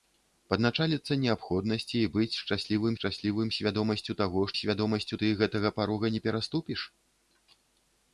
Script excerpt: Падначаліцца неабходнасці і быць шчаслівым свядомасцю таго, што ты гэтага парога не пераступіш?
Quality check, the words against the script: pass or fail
fail